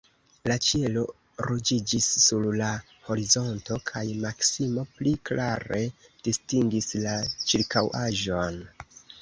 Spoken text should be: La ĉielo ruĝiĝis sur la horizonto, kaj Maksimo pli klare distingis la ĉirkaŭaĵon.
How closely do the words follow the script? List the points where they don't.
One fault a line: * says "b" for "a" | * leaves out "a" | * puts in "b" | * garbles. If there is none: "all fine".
all fine